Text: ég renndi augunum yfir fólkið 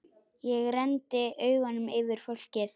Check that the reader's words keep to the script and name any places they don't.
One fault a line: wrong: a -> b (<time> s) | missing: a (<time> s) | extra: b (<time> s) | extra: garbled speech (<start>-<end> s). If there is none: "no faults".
no faults